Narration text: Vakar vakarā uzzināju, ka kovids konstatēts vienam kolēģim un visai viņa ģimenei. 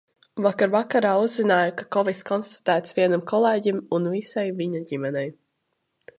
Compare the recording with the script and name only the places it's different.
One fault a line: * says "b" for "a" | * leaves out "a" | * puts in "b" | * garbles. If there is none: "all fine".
all fine